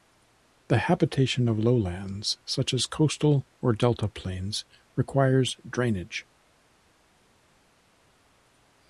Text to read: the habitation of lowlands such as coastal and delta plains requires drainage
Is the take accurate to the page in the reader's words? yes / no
no